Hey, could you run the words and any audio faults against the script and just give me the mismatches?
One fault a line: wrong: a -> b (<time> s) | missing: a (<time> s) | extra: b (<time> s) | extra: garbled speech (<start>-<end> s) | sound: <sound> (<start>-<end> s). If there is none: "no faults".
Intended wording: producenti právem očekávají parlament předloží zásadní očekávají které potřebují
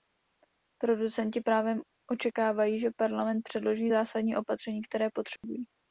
extra: že (2.8 s)
wrong: očekávají -> opatření (4.4 s)
sound: dropout (5.4-5.4 s)